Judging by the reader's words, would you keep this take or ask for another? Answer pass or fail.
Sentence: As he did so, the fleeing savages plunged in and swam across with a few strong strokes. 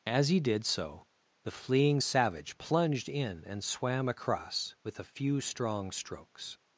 fail